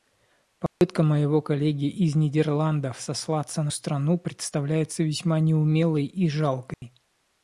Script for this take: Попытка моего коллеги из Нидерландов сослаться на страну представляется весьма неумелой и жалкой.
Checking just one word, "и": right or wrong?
right